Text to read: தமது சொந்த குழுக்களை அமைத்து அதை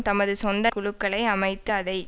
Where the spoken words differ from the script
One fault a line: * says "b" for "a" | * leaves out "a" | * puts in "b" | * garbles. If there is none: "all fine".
all fine